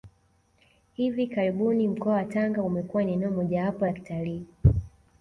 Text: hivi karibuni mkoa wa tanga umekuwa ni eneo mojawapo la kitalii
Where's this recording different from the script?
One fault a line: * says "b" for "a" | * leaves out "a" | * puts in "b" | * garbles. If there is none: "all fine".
all fine